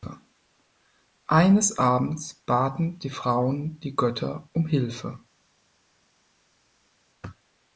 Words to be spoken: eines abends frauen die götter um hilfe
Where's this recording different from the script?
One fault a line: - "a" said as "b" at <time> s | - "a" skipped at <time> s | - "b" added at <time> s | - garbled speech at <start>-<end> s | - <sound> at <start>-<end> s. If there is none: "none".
- "baten die" added at 2.5 s